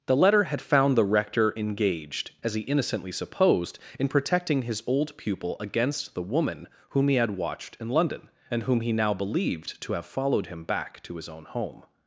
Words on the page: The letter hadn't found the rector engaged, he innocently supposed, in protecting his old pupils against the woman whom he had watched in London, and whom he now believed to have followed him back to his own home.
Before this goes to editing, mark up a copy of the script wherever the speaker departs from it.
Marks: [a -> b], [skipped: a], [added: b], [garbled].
The letter [hadn't -> had] found the rector engaged, [added: as] he innocently supposed, in protecting his old [pupils -> pupil] against the woman whom he had watched in London, and whom he now believed to have followed him back to his own home.